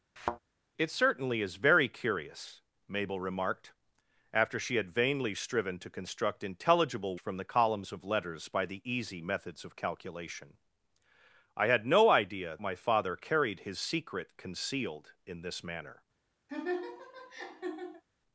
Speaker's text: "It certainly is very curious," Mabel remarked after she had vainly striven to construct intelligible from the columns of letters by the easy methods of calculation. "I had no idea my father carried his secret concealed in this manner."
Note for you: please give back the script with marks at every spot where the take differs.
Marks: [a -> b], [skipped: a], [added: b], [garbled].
"It certainly is very curious," Mabel remarked after she had vainly striven to construct intelligible from the columns of letters by the easy methods of calculation. "I had no idea my father carried his secret concealed in this manner."